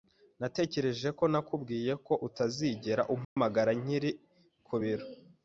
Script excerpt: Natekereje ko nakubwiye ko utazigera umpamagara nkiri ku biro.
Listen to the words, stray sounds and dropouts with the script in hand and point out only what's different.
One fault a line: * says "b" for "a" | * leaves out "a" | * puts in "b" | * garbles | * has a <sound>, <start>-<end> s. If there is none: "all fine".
* has a dropout, 3.2-3.4 s